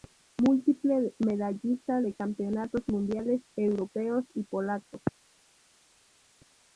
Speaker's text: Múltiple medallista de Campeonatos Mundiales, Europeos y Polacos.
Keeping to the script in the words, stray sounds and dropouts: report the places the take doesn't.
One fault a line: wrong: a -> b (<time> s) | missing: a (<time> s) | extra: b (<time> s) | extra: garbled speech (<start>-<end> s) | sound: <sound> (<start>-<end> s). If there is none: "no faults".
no faults